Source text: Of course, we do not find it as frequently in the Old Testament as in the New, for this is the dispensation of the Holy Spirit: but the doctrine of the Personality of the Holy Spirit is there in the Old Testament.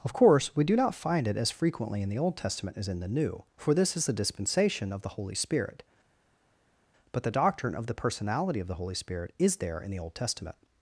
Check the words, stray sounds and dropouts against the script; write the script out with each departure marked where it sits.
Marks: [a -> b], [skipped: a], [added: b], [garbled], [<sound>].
Of course, we do not find it as frequently in the Old Testament as in the New, for this is the dispensation of the Holy Spirit: but the doctrine of the Personality of the Holy Spirit is there in the Old Testament.